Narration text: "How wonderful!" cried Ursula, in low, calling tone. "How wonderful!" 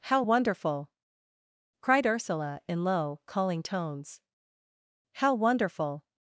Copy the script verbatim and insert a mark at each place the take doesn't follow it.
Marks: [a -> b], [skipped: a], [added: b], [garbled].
"How wonderful!" cried Ursula, in low, calling [tone. -> tones] "How wonderful!"